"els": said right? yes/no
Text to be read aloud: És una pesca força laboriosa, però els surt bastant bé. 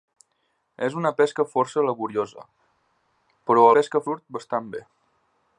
no